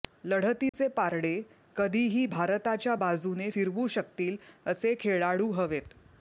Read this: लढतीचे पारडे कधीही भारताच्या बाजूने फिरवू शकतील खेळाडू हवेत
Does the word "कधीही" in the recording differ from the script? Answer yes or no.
no